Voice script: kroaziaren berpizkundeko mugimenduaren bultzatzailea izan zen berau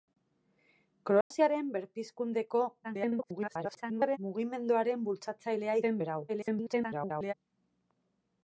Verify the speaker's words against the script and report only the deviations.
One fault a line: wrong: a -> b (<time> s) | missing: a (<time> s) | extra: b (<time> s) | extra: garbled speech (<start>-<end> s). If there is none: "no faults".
extra: garbled speech (2.8-4.2 s)
missing: izan (5.8 s)
extra: garbled speech (6.3-7.3 s)